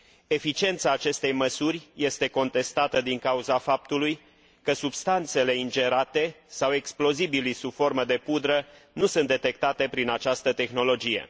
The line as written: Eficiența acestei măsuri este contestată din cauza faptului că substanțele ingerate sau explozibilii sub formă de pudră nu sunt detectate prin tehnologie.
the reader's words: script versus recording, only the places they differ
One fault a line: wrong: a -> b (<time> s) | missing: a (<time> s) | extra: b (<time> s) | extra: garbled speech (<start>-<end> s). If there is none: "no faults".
extra: această (10.1 s)